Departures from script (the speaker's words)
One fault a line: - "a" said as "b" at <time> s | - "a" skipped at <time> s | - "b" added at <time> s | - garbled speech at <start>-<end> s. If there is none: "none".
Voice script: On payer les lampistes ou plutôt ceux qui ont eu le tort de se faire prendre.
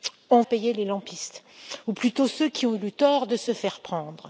none